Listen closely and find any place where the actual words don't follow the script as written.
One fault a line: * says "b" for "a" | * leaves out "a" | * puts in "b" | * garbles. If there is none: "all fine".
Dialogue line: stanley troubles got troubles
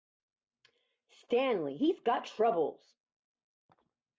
* says "he's" for "troubles"